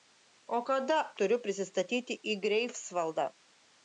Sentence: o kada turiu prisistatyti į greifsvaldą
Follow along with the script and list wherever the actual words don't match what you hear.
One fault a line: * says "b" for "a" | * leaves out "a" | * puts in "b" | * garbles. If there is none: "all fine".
all fine